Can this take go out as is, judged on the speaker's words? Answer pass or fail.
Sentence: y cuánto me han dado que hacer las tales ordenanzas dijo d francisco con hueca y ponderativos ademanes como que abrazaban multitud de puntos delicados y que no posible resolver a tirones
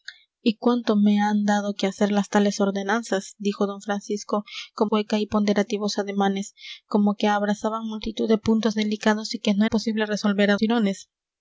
pass